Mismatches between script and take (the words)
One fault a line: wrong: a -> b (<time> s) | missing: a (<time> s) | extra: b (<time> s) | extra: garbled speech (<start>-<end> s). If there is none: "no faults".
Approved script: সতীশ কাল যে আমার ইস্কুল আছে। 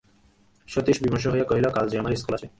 extra: বিমর্ষ হইয়া কহিল (1.0 s)